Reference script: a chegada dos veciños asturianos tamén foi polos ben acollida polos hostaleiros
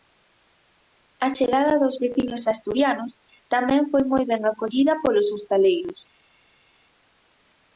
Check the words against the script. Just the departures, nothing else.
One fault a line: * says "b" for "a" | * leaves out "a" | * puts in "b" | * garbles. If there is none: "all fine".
* says "moi" for "polos"